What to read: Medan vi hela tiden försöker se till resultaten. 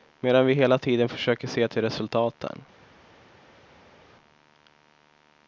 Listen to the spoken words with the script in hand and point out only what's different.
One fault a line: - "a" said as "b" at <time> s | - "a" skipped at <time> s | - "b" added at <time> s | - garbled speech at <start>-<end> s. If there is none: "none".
none